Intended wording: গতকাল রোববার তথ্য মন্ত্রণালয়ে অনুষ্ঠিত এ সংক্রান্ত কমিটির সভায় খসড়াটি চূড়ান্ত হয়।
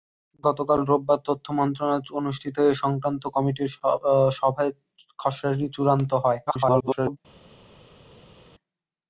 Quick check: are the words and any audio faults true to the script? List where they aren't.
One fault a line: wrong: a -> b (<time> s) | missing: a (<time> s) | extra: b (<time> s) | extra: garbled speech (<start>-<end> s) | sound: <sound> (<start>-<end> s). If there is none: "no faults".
extra: garbled speech (6.5-7.2 s)